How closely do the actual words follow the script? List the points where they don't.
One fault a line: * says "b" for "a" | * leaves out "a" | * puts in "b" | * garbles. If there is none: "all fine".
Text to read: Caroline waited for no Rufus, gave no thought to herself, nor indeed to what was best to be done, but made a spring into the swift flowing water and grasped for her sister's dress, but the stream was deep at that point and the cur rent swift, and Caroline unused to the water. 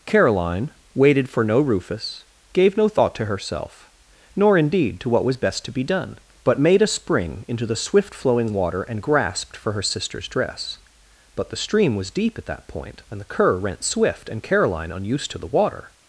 all fine